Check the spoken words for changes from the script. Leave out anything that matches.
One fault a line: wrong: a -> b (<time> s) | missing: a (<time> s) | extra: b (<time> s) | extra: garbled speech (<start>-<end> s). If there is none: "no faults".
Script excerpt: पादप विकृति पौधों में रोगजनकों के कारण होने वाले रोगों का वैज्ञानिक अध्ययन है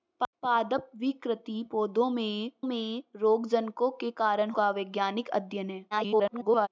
extra: में (2.6 s)
missing: होने वाले रोगों (4.5 s)
extra: garbled speech (5.9-6.7 s)